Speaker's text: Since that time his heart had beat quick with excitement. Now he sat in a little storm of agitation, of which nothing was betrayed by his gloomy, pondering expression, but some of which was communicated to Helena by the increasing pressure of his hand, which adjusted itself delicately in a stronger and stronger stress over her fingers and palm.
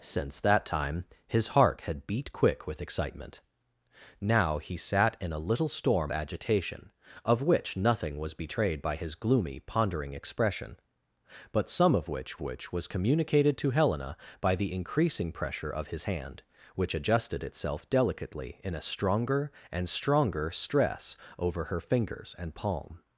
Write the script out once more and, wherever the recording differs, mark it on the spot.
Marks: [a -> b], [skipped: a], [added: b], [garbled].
Since that time his heart had beat quick with excitement. Now he sat in a little storm [skipped: of] agitation, of which nothing was betrayed by his gloomy, pondering expression, but some of which [added: which] was communicated to Helena by the increasing pressure of his hand, which adjusted itself delicately in a stronger and stronger stress over her fingers and palm.